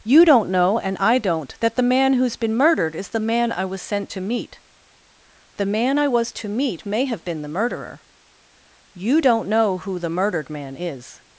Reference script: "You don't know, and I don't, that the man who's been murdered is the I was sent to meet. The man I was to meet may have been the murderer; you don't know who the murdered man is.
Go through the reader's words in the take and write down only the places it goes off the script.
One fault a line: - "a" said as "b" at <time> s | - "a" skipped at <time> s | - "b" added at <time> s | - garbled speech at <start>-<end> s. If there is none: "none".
- "man" added at 3.2 s